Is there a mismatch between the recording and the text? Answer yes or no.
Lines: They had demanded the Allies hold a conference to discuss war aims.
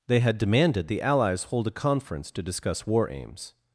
no